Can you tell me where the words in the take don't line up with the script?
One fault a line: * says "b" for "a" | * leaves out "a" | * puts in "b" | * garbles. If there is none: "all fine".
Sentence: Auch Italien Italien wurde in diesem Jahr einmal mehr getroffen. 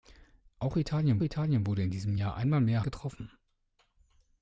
all fine